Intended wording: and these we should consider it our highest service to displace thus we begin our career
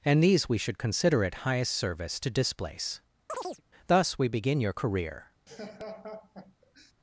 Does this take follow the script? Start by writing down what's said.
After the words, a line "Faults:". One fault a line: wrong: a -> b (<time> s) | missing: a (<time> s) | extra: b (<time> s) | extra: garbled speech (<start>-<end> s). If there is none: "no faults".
and these we should consider it highest service to displace thus we begin your career
Faults:
missing: our (1.4 s)
wrong: our -> your (4.6 s)